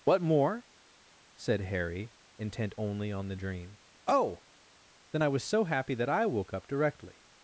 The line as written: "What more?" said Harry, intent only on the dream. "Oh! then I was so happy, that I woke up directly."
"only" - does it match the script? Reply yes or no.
yes